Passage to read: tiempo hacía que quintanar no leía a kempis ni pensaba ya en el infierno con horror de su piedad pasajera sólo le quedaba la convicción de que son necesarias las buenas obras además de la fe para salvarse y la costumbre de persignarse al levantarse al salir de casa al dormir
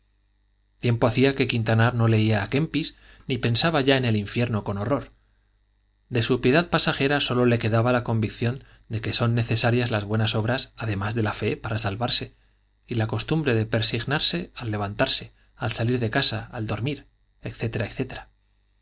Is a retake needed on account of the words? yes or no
no